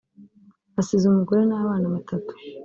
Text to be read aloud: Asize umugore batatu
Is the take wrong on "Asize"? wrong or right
right